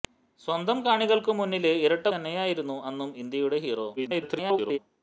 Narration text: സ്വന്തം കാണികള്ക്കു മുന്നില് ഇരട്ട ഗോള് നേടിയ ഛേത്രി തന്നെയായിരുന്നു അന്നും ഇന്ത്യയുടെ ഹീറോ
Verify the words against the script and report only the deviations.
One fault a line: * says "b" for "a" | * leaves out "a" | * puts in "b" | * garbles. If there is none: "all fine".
* leaves out "ഗോള് നേടിയ ഛേത്രി"
* garbles